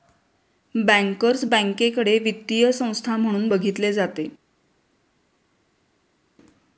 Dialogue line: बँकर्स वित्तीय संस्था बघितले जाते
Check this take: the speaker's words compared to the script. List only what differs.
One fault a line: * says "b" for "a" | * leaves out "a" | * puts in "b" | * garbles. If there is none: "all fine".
* puts in "बँकेकडे"
* puts in "म्हणून"